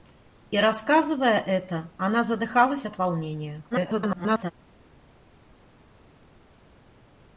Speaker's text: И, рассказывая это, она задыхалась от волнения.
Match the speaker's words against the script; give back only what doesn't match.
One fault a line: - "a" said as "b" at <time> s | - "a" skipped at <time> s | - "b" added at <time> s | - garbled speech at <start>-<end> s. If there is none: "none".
- garbled speech at 3.7-4.5 s